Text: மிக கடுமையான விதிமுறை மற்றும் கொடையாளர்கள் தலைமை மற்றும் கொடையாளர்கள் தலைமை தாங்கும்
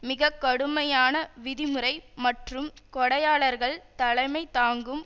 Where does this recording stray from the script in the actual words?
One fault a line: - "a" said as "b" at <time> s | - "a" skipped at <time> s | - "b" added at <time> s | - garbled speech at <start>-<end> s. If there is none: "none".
- "மற்றும் கொடையாளர்கள் தலைமை" skipped at 4.4 s